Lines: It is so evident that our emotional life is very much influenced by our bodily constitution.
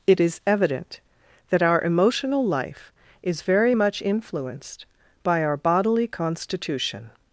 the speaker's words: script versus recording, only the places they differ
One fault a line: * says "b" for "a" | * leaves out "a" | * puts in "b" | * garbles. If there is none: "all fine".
* leaves out "so"